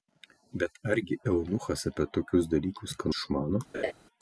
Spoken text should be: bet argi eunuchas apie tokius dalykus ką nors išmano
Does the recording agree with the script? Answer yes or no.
no